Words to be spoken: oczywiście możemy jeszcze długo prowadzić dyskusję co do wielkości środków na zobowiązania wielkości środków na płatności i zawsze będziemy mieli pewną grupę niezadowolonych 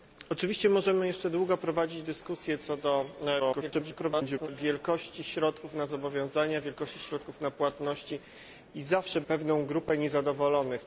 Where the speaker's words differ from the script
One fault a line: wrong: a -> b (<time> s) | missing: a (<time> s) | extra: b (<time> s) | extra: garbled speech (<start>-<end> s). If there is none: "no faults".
extra: garbled speech (3.4-4.5 s)
missing: będziemy mieli (9.2 s)